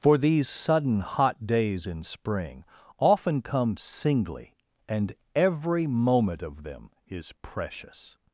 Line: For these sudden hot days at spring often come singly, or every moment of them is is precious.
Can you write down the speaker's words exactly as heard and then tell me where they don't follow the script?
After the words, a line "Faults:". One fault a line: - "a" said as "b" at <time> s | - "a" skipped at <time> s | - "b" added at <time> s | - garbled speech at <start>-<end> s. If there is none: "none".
For these sudden hot days in spring often come singly, and every moment of them is precious.
Faults:
- "at" said as "in" at 1.9 s
- "or" said as "and" at 4.9 s
- "is" skipped at 7.3 s